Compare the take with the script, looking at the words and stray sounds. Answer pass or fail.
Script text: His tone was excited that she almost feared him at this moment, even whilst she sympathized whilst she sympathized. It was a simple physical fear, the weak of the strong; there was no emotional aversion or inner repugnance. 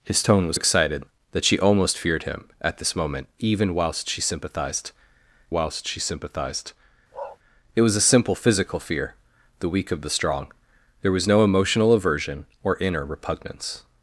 fail